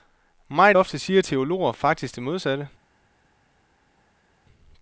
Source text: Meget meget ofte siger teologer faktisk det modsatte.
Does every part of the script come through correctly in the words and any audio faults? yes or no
no